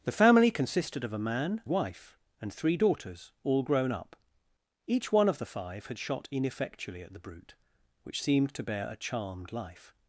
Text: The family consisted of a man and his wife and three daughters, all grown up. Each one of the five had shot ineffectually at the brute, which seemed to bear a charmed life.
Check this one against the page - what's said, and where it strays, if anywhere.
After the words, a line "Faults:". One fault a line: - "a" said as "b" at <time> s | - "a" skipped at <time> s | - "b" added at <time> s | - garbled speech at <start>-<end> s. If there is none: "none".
The family consisted of a man wife and three daughters, all grown up. Each one of the five had shot ineffectually at the brute, which seemed to bear a charmed life.
Faults:
- "and his" skipped at 1.6 s